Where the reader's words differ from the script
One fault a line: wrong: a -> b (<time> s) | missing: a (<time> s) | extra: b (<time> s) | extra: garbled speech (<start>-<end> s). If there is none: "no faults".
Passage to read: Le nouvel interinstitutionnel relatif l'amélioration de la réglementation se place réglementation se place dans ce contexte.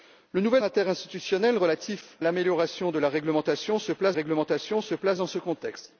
no faults